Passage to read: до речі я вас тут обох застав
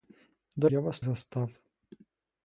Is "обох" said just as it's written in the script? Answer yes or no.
no